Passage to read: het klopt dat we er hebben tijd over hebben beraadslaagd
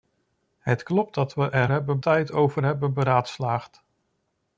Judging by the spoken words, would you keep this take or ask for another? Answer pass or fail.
pass